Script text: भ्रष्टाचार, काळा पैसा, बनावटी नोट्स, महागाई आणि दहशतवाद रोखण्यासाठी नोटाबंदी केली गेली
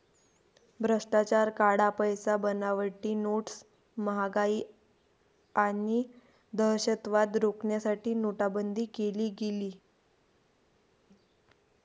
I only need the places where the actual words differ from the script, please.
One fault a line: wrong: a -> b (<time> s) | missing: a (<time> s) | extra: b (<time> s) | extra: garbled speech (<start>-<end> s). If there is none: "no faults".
no faults